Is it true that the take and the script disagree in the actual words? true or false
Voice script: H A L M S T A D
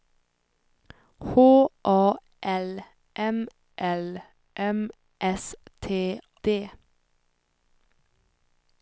true